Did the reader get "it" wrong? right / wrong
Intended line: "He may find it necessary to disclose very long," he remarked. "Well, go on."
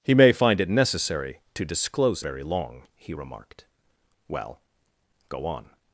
right